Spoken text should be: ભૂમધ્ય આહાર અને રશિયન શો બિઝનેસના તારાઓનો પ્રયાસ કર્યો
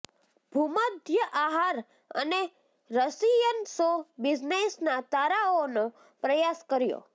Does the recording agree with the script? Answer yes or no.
yes